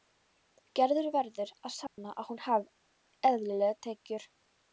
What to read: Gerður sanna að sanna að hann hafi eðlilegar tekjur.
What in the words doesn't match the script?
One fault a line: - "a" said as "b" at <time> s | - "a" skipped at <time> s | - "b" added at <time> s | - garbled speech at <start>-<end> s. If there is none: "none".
- "sanna" said as "verður" at 1.1 s
- "hann" said as "hún" at 2.3 s